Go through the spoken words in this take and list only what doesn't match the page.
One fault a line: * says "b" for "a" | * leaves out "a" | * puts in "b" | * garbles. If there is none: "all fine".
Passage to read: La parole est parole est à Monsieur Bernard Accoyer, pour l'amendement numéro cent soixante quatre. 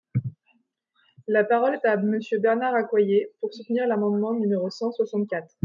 * leaves out "parole est"
* puts in "soutenir"